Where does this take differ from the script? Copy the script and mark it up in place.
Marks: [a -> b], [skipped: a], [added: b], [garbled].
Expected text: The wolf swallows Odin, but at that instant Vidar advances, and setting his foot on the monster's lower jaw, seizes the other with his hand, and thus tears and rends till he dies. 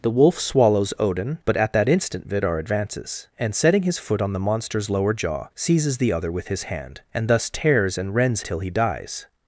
The wolf swallows Odin, but at that instant Vidar advances, and setting his foot on the monster's lower jaw, seizes the other with his hand, and thus tears and rends till he dies.